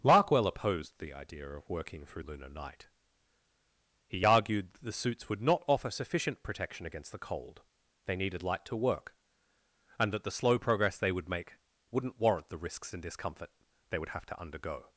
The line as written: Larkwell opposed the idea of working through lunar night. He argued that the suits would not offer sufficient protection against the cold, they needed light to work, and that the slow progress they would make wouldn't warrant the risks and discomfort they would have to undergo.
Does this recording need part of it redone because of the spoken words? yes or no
no